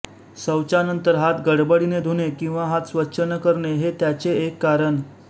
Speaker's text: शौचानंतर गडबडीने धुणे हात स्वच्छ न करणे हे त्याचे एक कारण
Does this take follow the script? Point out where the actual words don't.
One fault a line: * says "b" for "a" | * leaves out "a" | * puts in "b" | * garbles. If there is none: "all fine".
* puts in "हात"
* puts in "किंवा"